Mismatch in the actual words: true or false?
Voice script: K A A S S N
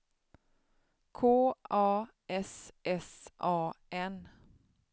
true